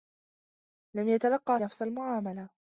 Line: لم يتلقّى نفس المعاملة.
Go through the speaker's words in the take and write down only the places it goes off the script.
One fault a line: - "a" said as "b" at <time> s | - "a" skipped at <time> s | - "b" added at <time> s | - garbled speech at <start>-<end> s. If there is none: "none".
none